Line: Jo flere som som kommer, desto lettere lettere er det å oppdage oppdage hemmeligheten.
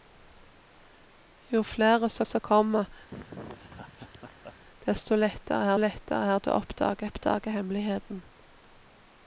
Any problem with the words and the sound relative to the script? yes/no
yes